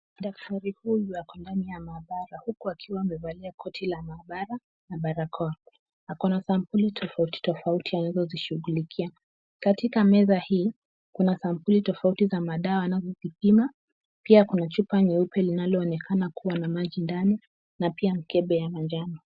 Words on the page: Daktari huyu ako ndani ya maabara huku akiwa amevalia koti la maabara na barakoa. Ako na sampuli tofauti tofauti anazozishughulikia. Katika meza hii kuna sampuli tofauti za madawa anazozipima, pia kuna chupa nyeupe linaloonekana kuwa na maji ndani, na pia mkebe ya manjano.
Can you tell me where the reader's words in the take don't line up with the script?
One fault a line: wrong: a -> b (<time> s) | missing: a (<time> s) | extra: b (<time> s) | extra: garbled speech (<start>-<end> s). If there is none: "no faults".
no faults